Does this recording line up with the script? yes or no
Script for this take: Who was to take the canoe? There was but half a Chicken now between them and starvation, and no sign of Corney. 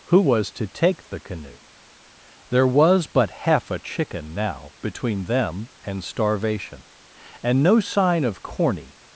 yes